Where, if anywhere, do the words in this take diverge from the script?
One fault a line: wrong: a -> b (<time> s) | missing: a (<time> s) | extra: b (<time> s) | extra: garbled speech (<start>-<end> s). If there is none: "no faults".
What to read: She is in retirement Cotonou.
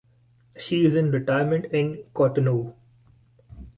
extra: in (1.6 s)